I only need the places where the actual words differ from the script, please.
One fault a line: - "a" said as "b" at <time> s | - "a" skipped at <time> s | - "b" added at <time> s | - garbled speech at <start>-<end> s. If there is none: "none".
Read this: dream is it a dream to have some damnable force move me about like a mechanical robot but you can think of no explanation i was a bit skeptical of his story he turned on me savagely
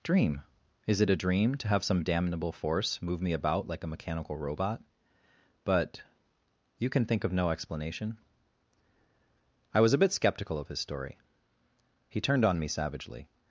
none